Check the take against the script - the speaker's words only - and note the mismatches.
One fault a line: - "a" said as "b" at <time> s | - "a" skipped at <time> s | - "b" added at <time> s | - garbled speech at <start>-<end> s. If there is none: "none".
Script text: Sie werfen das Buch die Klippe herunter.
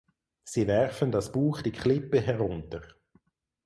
none